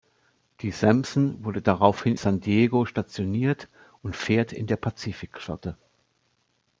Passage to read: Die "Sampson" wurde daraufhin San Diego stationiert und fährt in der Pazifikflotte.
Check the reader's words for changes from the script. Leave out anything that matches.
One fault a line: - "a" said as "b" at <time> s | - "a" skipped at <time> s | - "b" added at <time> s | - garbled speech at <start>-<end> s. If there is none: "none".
none